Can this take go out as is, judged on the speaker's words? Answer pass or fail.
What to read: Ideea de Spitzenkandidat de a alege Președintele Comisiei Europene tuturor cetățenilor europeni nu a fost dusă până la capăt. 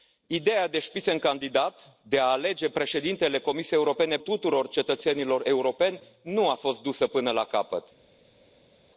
pass